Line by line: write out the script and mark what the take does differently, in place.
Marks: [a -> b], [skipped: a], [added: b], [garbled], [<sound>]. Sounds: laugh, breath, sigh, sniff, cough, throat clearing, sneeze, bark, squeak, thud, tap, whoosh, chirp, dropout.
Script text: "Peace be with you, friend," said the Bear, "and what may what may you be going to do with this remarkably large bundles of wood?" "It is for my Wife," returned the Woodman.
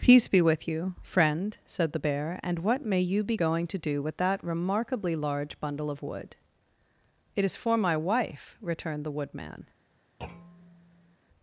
"Peace be with you, friend," said the Bear, "and what may [skipped: what may] you be going to do with [this -> that] remarkably large [bundles -> bundle] of wood?" "It is for my Wife," returned the Woodman. [thud]